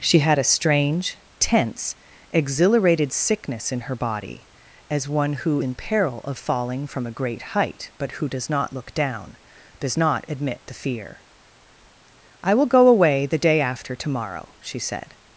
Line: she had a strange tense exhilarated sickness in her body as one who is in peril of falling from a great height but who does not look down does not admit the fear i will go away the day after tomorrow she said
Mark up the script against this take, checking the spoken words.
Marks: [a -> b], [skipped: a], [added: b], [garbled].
she had a strange tense exhilarated sickness in her body as one who [skipped: is] in peril of falling from a great height but who does not look down does not admit the fear i will go away the day after tomorrow she said